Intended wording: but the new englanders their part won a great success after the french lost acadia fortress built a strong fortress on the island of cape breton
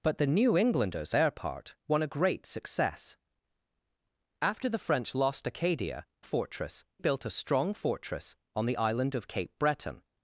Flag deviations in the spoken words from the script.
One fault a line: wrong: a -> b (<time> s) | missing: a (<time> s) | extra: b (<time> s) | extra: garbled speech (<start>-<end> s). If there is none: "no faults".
no faults